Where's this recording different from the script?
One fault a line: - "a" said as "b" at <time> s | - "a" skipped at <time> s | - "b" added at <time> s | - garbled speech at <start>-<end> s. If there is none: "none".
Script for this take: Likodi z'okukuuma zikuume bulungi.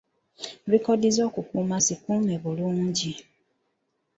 none